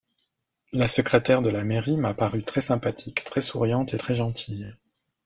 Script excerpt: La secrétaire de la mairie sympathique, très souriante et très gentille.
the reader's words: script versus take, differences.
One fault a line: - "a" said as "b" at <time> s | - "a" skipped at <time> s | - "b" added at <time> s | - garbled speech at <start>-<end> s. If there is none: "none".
- "m'a paru très" added at 1.9 s